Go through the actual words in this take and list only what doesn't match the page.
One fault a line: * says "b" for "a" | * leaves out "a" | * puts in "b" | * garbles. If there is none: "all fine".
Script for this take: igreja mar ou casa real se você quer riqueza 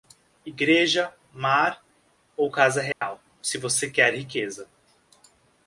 all fine